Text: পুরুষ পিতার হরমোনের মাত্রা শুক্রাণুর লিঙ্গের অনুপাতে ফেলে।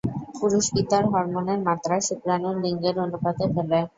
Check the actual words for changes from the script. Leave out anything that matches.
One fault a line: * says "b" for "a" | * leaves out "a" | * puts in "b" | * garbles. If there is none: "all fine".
all fine